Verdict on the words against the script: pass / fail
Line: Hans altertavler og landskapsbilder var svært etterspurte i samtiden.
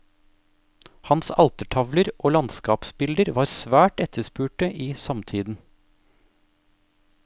pass